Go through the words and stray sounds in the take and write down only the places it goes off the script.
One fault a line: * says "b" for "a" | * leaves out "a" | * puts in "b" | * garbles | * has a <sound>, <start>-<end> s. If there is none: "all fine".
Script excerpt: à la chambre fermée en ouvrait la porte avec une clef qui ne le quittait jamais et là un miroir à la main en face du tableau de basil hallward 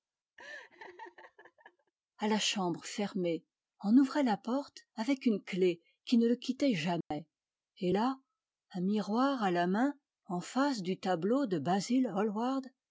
* has a laugh, 0.4-1.9 s
* has a dropout, 7.0-7.1 s